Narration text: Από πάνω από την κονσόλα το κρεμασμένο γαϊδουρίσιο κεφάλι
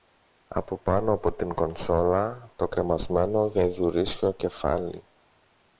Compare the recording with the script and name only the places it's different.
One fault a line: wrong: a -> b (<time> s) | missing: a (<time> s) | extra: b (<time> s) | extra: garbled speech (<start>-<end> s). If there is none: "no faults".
no faults